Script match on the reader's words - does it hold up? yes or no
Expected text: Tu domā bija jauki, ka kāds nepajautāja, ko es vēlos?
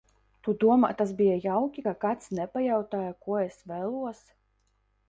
no